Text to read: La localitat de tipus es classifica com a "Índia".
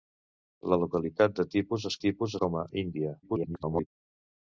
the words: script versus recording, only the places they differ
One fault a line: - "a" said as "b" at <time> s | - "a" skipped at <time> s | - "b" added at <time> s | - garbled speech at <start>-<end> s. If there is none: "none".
- "classifica" said as "tipus" at 2.1 s
- garbled speech at 3.2-3.9 s